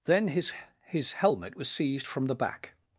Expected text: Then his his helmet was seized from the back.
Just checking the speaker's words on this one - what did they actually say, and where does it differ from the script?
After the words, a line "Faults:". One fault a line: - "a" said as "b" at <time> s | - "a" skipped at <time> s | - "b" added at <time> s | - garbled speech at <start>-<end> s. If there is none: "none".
Then his his helmet was seized from the back.
Faults:
none